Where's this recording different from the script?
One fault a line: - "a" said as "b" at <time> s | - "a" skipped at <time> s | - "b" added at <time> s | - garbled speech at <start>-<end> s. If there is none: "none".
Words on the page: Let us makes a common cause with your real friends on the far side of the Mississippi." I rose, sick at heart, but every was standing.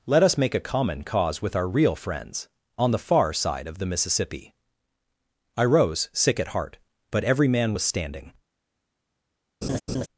- "makes" said as "make" at 0.3 s
- "your" said as "our" at 1.6 s
- "man" added at 7.5 s